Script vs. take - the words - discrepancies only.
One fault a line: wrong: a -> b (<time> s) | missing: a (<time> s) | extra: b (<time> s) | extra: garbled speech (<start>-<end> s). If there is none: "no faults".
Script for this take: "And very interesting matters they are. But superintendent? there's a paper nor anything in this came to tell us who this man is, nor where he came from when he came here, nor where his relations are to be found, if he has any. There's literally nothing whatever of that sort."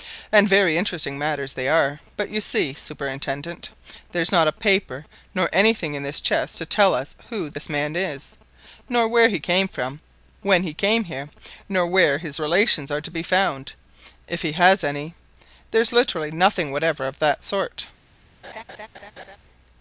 extra: you see (2.3 s)
extra: not (4.3 s)
wrong: came -> chest (6.2 s)